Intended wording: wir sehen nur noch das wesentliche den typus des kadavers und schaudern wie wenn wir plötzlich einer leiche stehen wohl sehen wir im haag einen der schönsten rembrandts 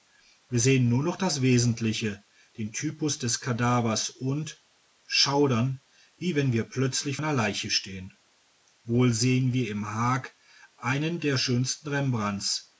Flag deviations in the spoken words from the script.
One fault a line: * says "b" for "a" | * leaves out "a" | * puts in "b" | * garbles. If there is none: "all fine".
all fine